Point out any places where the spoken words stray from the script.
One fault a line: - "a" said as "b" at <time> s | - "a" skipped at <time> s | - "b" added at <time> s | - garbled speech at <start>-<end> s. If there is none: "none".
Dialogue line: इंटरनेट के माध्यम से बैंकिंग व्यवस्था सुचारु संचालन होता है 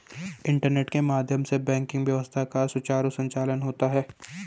- "का" added at 2.5 s